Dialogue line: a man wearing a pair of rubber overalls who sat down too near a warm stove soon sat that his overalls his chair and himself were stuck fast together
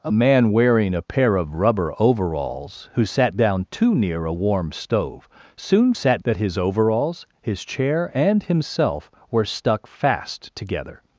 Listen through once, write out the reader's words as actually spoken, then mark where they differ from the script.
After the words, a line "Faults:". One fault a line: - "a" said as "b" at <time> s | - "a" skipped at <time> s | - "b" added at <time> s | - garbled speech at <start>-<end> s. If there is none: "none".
a man wearing a pair of rubber overalls who sat down too near a warm stove soon sat that his overalls his chair and himself were stuck fast together
Faults:
none